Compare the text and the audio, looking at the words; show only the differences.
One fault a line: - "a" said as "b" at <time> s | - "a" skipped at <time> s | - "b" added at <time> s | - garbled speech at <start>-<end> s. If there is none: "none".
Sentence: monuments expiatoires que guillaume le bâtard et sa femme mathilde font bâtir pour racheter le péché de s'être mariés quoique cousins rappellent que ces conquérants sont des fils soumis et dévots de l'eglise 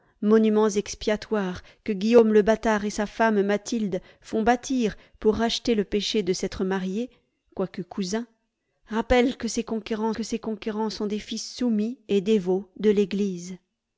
- "que ces conquérants" added at 10.1 s